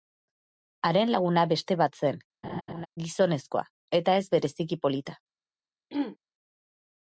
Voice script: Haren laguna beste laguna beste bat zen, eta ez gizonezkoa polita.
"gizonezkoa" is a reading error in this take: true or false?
true